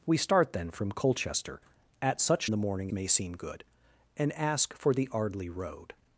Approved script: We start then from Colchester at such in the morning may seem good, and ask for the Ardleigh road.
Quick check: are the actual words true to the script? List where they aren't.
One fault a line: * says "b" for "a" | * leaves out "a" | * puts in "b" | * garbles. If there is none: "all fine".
all fine